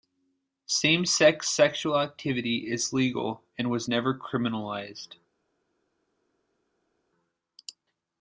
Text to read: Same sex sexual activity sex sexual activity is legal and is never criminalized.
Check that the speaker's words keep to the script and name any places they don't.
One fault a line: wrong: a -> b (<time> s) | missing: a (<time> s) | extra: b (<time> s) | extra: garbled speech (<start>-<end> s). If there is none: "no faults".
missing: sex sexual activity (2.7 s)
wrong: is -> was (3.7 s)